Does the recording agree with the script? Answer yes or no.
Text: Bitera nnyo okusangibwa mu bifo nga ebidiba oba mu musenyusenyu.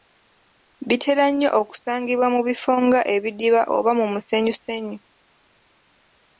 yes